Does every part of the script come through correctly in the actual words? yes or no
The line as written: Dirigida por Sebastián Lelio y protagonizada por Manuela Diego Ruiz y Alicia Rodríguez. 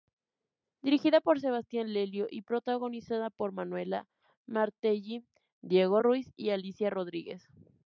no